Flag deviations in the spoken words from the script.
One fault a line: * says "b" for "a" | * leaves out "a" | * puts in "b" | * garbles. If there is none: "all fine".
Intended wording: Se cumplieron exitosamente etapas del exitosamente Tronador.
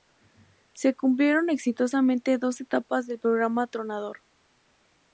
* puts in "dos"
* says "programa" for "exitosamente"